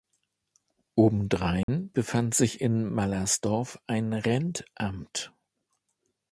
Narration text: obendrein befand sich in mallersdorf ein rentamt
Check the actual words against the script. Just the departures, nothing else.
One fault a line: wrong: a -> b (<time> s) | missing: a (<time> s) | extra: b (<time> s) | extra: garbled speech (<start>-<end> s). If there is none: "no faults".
no faults